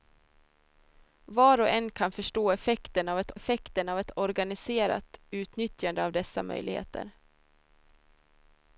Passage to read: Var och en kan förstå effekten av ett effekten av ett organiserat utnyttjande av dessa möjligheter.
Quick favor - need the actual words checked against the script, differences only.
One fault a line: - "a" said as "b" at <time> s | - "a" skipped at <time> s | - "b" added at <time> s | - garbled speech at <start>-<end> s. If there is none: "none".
none